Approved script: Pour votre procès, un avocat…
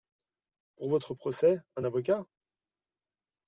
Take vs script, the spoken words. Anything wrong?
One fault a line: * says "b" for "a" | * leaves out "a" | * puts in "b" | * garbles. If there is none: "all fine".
all fine